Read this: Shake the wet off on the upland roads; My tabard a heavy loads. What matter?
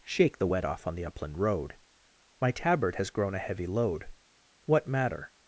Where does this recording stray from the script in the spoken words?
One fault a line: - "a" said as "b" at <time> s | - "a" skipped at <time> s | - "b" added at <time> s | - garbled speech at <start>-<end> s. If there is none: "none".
- "roads" said as "road" at 1.4 s
- "has grown" added at 2.9 s
- "loads" said as "load" at 3.7 s